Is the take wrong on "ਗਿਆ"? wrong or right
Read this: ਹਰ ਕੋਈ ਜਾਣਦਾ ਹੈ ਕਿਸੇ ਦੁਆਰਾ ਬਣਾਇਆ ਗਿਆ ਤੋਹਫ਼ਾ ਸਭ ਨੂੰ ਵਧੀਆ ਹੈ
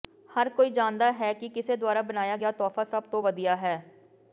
right